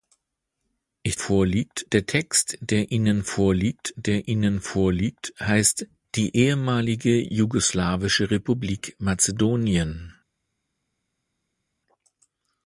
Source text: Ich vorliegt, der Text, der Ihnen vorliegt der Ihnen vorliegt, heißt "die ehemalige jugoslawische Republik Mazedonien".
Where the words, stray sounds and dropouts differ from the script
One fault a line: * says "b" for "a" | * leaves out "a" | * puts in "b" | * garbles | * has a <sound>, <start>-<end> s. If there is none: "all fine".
all fine